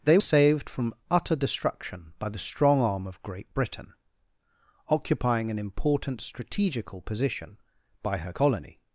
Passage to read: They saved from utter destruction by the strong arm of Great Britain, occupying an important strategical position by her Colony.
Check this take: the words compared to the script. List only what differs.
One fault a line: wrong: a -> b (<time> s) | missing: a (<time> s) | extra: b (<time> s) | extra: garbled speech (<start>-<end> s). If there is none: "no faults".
no faults